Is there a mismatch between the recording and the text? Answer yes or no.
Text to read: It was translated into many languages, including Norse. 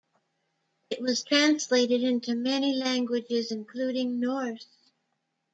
no